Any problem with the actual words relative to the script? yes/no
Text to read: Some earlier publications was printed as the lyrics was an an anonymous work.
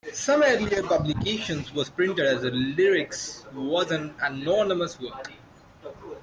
yes